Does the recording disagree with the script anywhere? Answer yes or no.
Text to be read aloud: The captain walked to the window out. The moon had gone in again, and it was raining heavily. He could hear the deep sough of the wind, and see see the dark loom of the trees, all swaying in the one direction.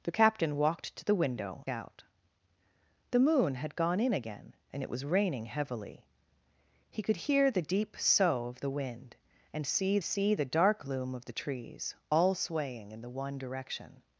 no